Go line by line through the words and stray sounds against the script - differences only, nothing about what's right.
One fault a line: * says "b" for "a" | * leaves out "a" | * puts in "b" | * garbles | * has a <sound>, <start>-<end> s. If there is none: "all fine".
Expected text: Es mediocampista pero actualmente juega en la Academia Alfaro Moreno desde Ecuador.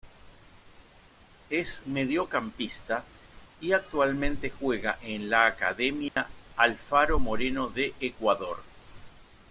* says "y" for "pero"
* has a dropout, 6.1-6.2 s
* says "de" for "desde"